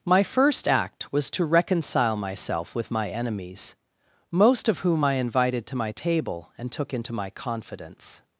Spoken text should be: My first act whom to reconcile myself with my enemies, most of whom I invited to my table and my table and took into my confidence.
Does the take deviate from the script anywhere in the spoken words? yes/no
yes